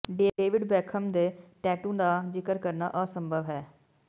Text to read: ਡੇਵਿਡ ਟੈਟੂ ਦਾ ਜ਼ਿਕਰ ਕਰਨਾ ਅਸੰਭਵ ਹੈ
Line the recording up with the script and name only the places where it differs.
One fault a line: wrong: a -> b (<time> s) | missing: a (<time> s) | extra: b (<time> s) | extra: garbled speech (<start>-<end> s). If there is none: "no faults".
extra: ਬੇਖਮ ਦੇ (0.6 s)